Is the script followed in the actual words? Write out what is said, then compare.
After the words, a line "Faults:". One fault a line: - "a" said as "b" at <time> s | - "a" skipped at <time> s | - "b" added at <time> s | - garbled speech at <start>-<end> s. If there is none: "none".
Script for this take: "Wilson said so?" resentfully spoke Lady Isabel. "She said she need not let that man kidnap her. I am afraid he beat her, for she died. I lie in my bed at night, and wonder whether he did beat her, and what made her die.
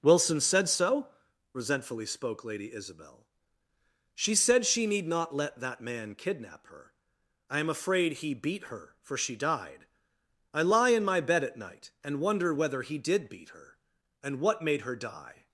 "Wilson said so?" resentfully spoke Lady Isabel. "She said she need not let that man kidnap her. I am afraid he beat her, for she died. I lie in my bed at night, and wonder whether he did beat her, and what made her die.
Faults:
none